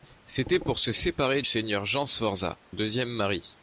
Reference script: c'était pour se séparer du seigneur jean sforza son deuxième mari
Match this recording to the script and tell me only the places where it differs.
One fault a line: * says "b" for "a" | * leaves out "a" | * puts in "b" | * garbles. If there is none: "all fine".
* leaves out "du"
* leaves out "son"